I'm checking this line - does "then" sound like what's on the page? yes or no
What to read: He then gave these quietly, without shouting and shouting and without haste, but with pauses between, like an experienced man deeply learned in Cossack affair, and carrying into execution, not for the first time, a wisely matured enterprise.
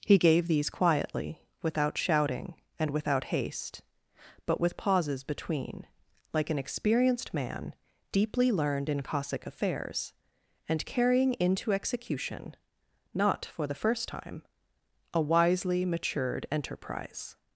no